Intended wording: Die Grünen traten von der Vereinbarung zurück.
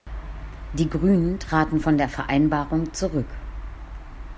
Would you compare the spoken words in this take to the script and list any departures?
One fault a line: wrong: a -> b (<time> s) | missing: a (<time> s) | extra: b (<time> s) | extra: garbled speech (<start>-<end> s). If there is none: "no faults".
no faults